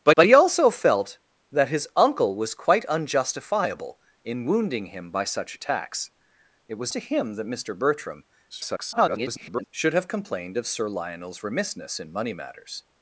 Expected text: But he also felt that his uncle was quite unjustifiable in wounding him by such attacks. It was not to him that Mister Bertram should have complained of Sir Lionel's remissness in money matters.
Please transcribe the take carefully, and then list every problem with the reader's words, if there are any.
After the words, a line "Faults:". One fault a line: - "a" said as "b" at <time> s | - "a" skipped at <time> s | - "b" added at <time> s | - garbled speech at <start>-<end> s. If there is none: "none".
But but he also felt that his uncle was quite unjustifiable in wounding him by such attacks. It was to him that Mister Bertram [garbled] should have complained of Sir Lionel's remissness in money matters.
Faults:
- "but" added at 0.1 s
- "not" skipped at 6.9 s
- garbled speech at 8.5-9.7 s